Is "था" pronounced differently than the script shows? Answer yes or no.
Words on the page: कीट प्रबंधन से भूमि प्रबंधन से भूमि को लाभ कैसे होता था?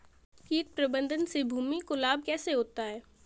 yes